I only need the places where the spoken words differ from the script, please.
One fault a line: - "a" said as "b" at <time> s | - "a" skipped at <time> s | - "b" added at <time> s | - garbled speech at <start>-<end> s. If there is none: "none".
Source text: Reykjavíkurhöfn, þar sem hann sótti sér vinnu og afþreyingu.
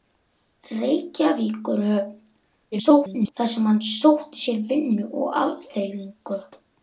- garbled speech at 2.7-3.3 s